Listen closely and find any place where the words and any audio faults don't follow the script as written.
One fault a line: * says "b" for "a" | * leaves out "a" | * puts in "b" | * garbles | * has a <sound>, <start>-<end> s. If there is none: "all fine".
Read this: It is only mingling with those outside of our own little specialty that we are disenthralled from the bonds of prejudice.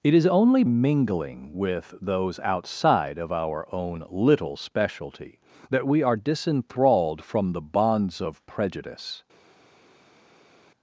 all fine